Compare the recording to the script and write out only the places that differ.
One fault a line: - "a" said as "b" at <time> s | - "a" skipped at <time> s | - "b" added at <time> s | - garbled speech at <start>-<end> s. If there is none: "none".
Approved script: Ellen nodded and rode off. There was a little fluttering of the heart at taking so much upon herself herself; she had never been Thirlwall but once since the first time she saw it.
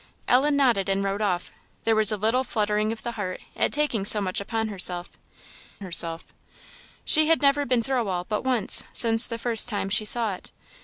none